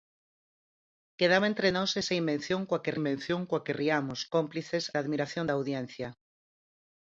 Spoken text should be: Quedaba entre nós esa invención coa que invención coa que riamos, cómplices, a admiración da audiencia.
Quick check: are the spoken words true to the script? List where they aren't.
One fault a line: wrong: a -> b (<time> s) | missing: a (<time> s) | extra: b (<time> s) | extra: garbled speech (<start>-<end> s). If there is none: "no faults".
no faults